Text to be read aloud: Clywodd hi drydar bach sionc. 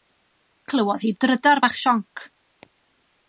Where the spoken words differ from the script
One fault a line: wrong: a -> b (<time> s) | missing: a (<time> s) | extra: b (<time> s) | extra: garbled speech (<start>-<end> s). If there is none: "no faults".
no faults